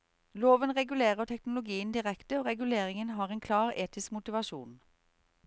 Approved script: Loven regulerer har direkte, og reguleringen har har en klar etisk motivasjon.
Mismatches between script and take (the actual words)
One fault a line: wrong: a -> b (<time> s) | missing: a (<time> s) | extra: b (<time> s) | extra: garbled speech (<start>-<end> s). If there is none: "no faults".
wrong: har -> teknologien (1.2 s)
missing: har (3.3 s)